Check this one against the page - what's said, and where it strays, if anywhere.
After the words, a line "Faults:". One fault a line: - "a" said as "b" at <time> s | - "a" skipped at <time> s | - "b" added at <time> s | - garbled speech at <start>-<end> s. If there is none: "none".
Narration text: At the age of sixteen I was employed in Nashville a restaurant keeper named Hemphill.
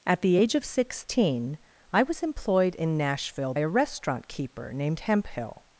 At the age of sixteen I was employed in Nashville a restaurant keeper named Hemphill.
Faults:
none